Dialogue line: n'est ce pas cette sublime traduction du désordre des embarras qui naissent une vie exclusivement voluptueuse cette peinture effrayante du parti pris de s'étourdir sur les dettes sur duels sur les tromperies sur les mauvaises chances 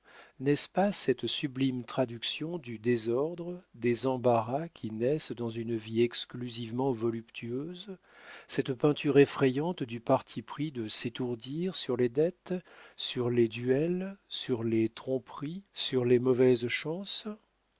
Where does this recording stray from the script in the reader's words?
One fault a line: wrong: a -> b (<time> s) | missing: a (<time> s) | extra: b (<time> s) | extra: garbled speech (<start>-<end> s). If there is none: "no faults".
extra: dans (5.3 s)
extra: les (13.3 s)